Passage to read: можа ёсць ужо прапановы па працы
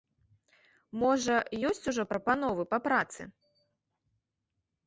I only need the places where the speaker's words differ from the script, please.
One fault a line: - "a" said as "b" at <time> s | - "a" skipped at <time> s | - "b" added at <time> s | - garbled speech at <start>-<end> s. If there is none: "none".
none